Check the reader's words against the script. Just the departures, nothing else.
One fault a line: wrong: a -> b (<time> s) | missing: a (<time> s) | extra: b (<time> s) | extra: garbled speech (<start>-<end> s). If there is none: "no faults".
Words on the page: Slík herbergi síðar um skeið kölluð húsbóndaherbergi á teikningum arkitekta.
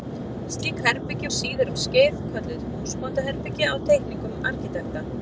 no faults